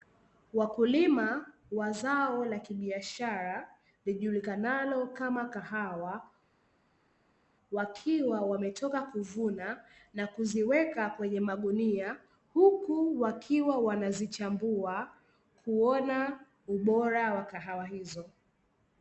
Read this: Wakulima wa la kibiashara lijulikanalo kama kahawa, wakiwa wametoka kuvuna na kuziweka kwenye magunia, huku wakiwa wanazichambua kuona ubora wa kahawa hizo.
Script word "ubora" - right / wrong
right